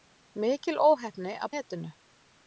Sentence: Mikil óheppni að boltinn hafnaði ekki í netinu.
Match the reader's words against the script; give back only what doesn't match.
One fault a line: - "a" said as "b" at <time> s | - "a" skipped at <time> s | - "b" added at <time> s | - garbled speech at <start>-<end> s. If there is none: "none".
- "boltinn hafnaði ekki" skipped at 1.5 s